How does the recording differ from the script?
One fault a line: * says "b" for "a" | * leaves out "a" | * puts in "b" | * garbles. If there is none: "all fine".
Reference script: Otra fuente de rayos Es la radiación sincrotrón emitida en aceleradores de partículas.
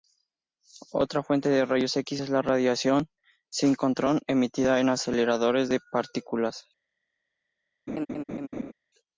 * puts in "X"